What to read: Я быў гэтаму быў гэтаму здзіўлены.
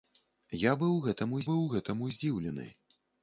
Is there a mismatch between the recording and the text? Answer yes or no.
no